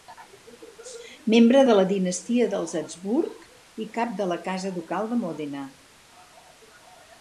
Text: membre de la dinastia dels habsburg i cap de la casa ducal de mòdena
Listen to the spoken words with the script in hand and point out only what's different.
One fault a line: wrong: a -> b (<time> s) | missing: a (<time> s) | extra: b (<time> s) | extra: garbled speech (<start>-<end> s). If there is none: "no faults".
no faults